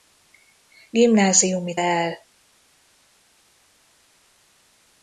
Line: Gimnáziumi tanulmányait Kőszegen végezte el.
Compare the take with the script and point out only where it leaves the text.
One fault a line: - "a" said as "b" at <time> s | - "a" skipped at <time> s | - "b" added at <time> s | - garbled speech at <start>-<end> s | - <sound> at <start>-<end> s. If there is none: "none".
- "tanulmányait Kőszegen végezte" skipped at 1.8 s